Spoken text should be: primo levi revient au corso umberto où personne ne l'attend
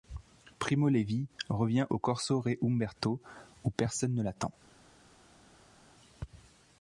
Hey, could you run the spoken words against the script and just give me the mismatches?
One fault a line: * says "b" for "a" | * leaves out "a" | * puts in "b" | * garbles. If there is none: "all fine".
* puts in "re"